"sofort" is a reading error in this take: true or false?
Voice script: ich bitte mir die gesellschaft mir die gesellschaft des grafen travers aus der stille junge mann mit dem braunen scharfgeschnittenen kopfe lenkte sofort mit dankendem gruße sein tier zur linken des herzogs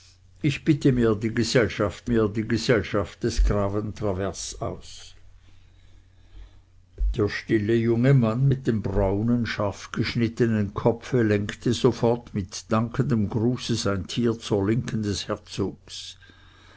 false